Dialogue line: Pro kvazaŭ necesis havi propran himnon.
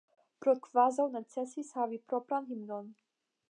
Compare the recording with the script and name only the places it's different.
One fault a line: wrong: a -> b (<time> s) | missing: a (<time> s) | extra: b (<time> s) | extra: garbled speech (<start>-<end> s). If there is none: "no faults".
no faults